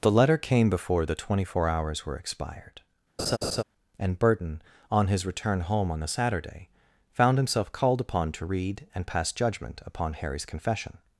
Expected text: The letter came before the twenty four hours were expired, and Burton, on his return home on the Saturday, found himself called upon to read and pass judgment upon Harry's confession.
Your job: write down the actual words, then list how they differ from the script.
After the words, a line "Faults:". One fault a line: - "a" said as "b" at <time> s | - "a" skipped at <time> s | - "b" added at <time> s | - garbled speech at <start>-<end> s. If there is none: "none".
The letter came before the twenty four hours were expired, and Burton, on his return home on the Saturday, found himself called upon to read and pass judgment upon Harry's confession.
Faults:
none